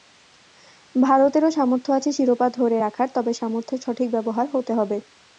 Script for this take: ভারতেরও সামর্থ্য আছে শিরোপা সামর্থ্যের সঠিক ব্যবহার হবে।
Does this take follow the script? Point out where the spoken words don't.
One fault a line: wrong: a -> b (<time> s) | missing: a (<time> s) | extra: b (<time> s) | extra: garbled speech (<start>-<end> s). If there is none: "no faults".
extra: ধরে রাখার তবে (2.6 s)
extra: হতে (4.5 s)